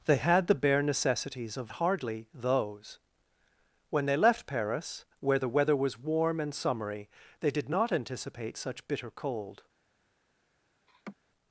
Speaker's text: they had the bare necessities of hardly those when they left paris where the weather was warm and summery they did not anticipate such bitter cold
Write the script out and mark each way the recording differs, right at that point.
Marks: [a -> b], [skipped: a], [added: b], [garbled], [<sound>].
they had the bare necessities of hardly those when they left paris where the weather was warm and summery they did not anticipate such bitter cold [laugh]